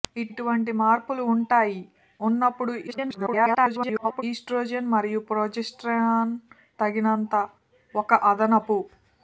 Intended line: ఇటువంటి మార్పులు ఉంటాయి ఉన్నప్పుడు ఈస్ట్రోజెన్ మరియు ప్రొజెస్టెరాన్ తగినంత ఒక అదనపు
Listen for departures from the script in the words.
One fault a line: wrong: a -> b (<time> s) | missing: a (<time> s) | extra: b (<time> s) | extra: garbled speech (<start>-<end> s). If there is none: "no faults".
extra: garbled speech (2.9-4.2 s)